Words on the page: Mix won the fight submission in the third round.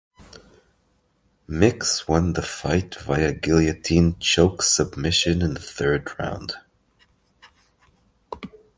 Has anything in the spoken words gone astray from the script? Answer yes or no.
yes